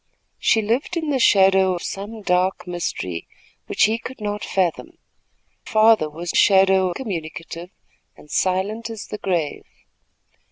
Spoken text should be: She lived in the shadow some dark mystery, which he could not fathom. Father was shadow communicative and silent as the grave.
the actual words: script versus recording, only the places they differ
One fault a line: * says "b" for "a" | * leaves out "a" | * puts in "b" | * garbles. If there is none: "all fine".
all fine